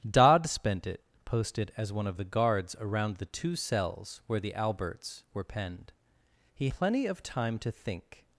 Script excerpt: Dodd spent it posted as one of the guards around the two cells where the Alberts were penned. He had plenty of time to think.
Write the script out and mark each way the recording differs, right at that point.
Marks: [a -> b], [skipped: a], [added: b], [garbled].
Dodd spent it posted as one of the guards around the two cells where the Alberts were penned. He [skipped: had] plenty of time to think.